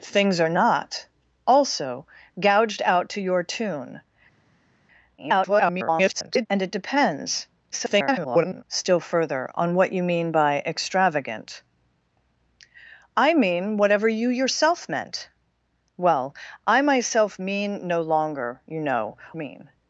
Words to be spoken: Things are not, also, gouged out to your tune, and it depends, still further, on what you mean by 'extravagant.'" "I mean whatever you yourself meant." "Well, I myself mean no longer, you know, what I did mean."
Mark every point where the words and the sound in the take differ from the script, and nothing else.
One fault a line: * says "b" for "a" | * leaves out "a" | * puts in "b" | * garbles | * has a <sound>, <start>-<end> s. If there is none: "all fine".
* garbles
* garbles
* leaves out "what I did"